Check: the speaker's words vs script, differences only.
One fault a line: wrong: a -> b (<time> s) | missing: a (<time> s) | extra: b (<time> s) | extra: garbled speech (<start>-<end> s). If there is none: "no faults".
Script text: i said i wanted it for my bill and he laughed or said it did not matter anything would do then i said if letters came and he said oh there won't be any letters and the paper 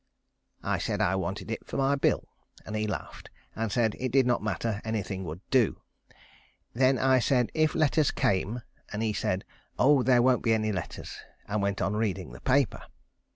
wrong: or -> and (3.5 s)
extra: went on reading (11.6 s)